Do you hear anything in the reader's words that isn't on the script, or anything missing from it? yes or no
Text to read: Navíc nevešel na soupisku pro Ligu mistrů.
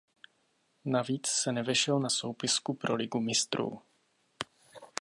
yes